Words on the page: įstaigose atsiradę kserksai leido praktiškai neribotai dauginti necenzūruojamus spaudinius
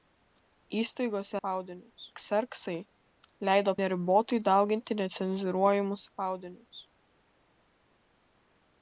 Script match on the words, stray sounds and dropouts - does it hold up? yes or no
no